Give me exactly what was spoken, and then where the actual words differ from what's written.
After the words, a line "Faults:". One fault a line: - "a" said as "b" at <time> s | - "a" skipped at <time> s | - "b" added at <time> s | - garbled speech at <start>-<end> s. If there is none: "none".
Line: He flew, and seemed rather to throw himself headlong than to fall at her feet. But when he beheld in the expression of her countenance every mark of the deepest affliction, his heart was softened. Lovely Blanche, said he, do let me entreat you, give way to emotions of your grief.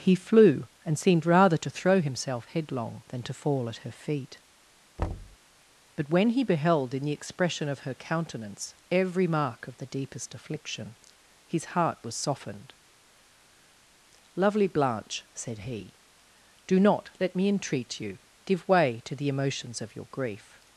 He flew, and seemed rather to throw himself headlong than to fall at her feet. But when he beheld in the expression of her countenance every mark of the deepest affliction, his heart was softened. Lovely Blanche, said he, do not, let me entreat you, give way to the emotions of your grief.
Faults:
- "not" added at 16.8 s
- "the" added at 19.1 s